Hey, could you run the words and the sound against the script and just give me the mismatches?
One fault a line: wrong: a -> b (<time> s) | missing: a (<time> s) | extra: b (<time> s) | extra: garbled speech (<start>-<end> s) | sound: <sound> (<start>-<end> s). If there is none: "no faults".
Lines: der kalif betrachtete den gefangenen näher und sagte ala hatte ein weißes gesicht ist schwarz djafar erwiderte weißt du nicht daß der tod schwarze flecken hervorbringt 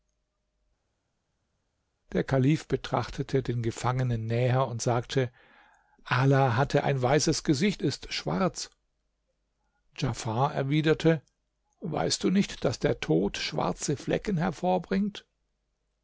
no faults